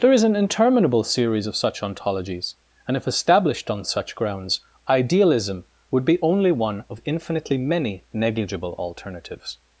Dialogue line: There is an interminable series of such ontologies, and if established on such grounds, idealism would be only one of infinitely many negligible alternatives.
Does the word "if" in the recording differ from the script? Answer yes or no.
no